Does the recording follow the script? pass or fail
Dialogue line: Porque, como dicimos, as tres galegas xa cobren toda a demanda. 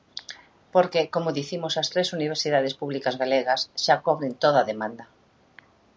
fail